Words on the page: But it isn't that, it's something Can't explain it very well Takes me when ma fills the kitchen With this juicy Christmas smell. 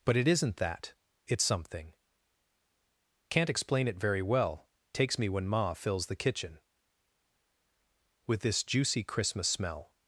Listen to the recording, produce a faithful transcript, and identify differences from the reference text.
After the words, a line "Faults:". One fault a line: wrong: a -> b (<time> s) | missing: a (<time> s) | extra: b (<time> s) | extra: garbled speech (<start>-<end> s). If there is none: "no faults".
But it isn't that, it's something Can't explain it very well Takes me when ma fills the kitchen With this juicy Christmas smell.
Faults:
no faults